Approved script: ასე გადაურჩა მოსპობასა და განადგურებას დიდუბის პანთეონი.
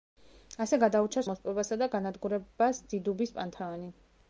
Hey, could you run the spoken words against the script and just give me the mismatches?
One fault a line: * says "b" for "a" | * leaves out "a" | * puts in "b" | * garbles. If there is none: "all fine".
all fine